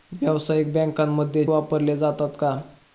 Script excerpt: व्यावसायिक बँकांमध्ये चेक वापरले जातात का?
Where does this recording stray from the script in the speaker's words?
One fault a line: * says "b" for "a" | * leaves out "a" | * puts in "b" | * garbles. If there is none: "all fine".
* leaves out "चेक"